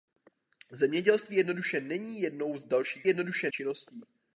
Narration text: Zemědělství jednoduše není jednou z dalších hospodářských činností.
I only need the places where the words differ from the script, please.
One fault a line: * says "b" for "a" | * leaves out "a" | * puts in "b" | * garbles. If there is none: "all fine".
* says "jednoduše" for "hospodářských"